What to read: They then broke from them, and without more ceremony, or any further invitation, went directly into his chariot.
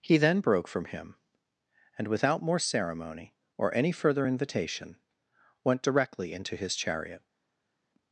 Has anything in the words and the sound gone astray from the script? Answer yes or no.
yes